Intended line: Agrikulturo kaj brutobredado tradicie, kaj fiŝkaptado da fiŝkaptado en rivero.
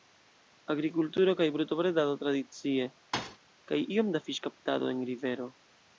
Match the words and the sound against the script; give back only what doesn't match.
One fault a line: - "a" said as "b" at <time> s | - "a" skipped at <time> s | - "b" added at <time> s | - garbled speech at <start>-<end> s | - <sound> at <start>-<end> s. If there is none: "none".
- thud at 3.1-3.4 s
- "fiŝkaptado" said as "iom" at 4.0 s